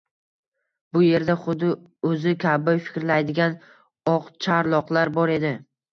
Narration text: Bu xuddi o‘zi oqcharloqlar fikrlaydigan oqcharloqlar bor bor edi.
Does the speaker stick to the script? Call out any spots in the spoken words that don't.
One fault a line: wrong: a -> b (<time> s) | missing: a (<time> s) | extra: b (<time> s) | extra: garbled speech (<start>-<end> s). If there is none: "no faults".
extra: yerda (1.1 s)
wrong: oqcharloqlar -> kabi (2.4 s)
missing: bor (5.3 s)